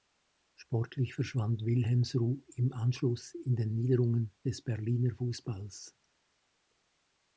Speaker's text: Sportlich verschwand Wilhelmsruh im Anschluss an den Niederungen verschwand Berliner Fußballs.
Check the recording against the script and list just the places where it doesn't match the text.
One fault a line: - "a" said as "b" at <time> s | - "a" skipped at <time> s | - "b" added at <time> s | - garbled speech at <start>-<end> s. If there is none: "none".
- "an" said as "in" at 3.3 s
- "verschwand" said as "des" at 4.5 s